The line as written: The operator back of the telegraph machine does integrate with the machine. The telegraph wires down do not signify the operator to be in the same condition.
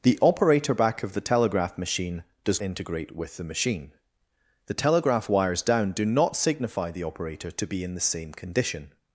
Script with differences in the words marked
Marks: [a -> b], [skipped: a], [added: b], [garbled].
The operator back of the telegraph machine does integrate with the machine. The telegraph wires down do not signify the operator to be in the same condition.